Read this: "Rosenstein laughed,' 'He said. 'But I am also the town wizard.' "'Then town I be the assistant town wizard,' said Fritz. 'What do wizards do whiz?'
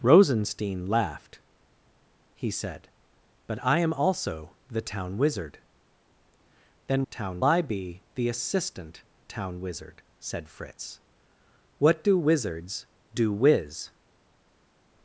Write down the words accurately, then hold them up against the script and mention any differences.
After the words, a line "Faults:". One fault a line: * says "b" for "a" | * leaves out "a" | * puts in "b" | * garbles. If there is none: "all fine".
"Rosenstein laughed,' 'He said. 'But I am also the town wizard.' "'Then town I be the assistant town wizard,' said Fritz. 'What do wizards do whiz?'
Faults:
all fine